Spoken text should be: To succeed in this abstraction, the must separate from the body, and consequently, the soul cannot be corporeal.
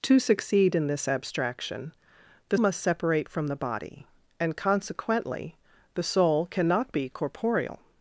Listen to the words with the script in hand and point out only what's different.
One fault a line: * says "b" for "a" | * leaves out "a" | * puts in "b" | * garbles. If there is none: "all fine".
all fine